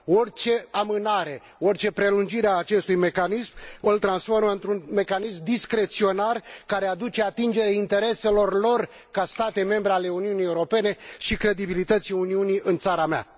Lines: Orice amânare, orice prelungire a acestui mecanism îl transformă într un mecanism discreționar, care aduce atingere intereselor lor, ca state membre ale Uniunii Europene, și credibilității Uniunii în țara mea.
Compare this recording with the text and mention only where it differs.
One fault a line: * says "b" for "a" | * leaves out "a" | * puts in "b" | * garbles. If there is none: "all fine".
all fine